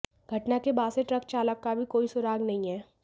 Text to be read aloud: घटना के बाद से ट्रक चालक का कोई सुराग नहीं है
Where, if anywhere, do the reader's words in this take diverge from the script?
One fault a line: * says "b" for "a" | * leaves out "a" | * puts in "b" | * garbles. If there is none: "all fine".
* puts in "भी"